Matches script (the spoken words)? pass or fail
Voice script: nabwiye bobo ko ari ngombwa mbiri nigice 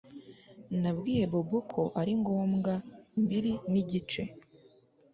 pass